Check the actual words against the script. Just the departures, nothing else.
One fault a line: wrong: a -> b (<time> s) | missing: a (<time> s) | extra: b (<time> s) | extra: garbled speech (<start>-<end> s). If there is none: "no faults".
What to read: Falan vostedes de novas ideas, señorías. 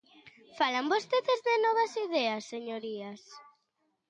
no faults